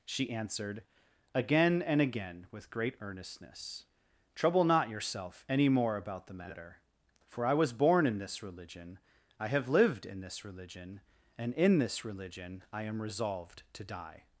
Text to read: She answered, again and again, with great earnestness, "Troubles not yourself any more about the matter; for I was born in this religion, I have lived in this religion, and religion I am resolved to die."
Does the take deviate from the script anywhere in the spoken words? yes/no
yes